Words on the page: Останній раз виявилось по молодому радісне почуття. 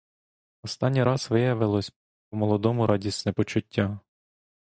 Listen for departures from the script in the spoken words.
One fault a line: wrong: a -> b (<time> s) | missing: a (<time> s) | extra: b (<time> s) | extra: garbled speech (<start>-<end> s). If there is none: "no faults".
no faults